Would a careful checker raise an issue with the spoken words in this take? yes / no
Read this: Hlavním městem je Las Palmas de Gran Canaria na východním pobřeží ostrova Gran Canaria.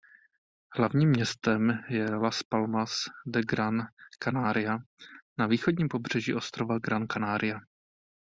no